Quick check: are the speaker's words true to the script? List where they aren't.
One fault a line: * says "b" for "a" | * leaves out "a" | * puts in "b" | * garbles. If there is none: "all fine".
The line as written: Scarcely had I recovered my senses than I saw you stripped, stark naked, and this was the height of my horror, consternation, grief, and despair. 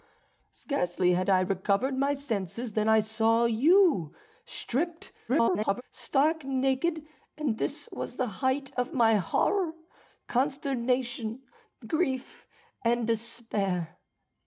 * garbles